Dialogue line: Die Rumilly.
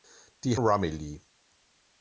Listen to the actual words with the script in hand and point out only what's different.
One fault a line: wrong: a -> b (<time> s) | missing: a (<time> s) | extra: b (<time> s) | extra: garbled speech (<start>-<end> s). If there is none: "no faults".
no faults